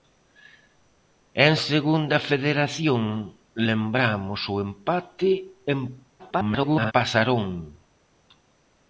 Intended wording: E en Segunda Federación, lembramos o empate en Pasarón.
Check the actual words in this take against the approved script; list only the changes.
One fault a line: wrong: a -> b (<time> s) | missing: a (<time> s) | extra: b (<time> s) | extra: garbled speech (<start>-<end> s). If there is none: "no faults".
extra: garbled speech (6.2-6.9 s)